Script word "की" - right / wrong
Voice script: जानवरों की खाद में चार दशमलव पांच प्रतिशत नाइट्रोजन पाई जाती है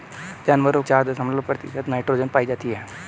wrong